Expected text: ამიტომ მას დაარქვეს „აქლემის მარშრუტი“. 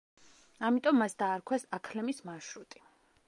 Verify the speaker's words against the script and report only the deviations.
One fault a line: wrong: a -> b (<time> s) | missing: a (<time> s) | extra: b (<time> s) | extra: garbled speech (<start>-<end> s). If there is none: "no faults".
no faults